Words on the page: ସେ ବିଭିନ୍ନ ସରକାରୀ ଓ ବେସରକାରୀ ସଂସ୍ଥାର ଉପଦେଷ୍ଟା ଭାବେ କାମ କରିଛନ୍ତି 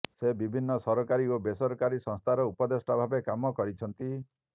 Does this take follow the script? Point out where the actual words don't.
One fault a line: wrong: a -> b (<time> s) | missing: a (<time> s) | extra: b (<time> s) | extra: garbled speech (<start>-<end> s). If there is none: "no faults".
no faults